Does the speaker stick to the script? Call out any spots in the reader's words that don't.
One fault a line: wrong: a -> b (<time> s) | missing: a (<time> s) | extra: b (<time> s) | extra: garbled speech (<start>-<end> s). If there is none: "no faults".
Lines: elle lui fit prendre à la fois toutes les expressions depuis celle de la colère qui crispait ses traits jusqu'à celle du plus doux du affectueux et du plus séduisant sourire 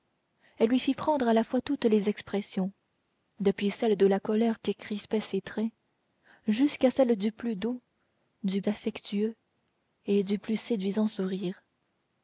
no faults